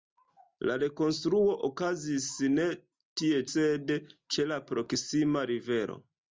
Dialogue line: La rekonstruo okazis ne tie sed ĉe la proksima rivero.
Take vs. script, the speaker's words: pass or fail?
pass